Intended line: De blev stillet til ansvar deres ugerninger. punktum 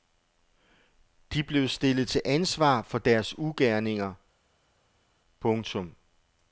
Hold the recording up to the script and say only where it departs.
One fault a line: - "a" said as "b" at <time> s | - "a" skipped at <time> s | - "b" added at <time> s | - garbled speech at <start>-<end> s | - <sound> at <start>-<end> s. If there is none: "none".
- "for" added at 2.8 s